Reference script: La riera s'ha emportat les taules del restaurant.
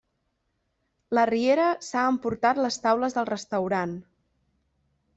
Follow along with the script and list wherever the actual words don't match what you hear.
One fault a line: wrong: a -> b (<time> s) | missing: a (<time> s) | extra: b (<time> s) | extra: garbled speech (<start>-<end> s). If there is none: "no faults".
no faults